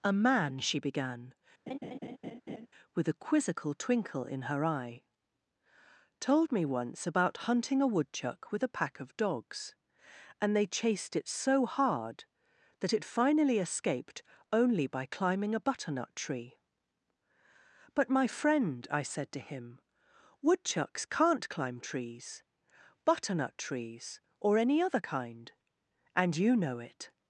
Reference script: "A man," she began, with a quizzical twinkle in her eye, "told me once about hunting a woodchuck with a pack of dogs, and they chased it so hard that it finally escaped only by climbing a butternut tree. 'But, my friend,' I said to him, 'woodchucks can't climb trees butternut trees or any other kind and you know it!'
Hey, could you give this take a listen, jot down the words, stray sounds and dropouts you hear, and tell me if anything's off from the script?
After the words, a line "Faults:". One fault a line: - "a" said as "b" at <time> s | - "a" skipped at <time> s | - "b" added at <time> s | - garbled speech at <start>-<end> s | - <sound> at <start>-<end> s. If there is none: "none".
"A man," she began, with a quizzical twinkle in her eye, "told me once about hunting a woodchuck with a pack of dogs, and they chased it so hard that it finally escaped only by climbing a butternut tree. 'But, my friend,' I said to him, 'woodchucks can't climb trees butternut trees or any other kind and you know it!'
Faults:
- laugh at 1.7-2.7 s